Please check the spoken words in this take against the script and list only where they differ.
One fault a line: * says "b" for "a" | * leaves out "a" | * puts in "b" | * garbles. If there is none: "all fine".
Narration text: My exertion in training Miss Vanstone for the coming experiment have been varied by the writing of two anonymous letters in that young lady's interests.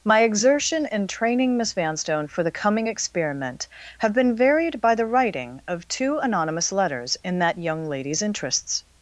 all fine